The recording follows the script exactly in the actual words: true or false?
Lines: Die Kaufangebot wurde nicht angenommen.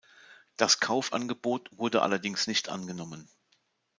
false